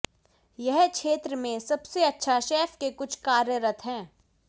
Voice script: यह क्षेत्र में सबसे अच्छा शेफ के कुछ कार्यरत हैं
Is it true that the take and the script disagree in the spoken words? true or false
false